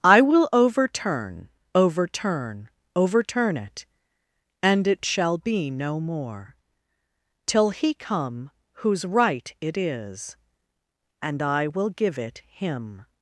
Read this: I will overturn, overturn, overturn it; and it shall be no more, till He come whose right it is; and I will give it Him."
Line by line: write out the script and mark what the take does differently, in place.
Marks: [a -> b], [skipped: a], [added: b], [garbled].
I will overturn, overturn, overturn it; and it shall be no more, till He come whose right it is; and I will give it Him."